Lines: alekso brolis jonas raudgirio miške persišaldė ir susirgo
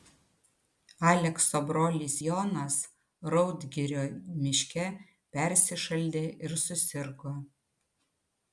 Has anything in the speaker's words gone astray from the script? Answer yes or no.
no